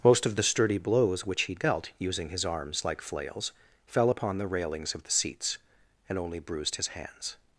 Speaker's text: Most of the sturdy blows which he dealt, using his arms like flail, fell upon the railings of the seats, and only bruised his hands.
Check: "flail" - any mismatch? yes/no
yes